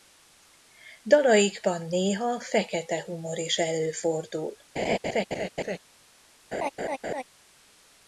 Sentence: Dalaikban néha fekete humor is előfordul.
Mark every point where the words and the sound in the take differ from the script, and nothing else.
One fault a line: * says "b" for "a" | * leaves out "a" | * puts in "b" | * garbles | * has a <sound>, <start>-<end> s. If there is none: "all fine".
* has a laugh, 4.8-5.8 s
* has a laugh, 6.5-7.2 s